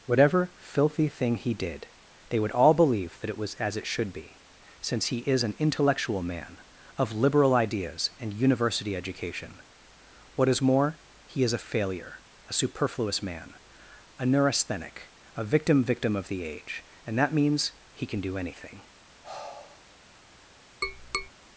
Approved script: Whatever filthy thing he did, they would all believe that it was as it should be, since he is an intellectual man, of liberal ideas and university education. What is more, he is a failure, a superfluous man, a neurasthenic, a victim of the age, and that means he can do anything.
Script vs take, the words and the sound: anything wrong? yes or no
yes